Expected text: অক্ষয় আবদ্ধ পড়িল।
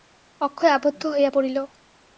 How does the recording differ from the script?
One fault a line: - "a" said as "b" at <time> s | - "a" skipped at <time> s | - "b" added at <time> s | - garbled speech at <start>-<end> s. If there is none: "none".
- "হইয়া" added at 1.1 s